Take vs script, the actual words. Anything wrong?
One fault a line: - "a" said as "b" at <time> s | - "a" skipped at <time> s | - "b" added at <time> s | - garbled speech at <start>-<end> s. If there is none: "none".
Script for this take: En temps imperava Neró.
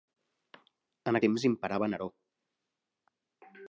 none